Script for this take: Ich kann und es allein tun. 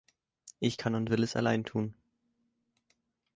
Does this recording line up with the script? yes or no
no